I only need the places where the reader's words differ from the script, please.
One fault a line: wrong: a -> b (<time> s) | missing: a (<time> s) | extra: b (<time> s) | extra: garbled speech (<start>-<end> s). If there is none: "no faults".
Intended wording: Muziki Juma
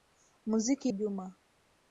no faults